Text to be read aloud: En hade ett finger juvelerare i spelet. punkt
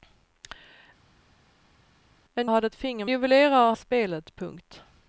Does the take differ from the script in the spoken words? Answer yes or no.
no